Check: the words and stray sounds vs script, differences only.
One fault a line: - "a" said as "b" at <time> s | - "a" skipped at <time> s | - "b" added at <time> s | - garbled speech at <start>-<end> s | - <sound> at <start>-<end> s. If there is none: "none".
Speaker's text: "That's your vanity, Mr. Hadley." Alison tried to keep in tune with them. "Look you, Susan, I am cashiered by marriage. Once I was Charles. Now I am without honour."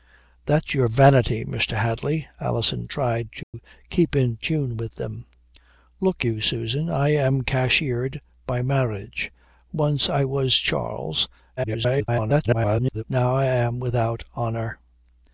- dropout at 3.4-3.5 s
- garbled speech at 11.6-13.0 s